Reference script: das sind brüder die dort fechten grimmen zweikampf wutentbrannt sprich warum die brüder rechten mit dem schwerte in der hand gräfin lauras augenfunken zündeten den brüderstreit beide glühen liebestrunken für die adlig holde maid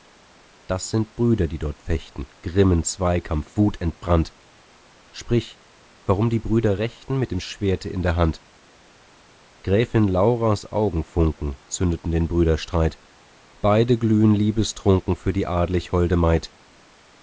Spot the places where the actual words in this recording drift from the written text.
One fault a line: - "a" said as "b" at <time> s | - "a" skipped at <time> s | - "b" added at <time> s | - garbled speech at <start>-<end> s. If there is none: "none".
none